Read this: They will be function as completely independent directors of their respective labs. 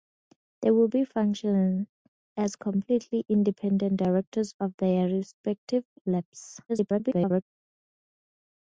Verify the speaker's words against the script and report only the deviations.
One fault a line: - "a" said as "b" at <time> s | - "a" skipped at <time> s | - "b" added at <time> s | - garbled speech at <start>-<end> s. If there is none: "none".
- garbled speech at 6.7-7.4 s